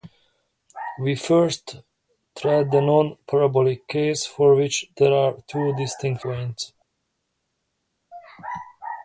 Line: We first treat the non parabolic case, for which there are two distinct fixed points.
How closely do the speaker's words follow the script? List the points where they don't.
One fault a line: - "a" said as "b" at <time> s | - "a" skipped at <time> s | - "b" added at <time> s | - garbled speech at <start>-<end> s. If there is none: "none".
- "fixed" skipped at 6.2 s